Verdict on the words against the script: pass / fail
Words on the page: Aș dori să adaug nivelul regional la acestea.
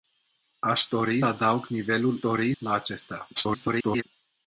fail